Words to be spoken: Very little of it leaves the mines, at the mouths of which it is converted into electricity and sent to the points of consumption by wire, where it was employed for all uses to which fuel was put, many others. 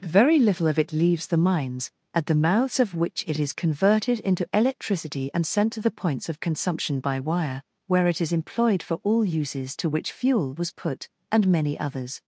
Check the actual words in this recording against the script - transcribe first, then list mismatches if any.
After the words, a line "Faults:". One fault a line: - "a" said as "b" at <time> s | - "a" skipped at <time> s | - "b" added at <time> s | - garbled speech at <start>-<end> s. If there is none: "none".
Very little of it leaves the mines, at the mouths of which it is converted into electricity and sent to the points of consumption by wire, where it is employed for all uses to which fuel was put, and many others.
Faults:
- "was" said as "is" at 8.2 s
- "and" added at 11.3 s